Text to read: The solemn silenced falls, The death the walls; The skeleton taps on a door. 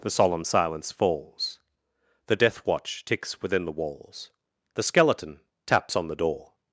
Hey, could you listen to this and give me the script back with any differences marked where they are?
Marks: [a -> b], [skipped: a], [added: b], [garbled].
The solemn [silenced -> silence] falls, The death [added: watch ticks within] the walls; The skeleton taps on [a -> the] door.